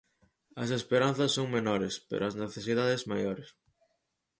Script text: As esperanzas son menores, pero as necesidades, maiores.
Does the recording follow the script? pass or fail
pass